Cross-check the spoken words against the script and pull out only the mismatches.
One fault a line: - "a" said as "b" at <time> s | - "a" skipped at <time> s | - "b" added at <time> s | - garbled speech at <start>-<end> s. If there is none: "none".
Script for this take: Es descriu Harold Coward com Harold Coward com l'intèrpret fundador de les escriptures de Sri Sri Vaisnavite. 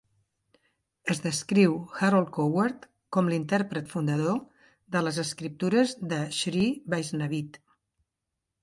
- "Harold Coward com" skipped at 3.3 s
- "Sri" skipped at 6.7 s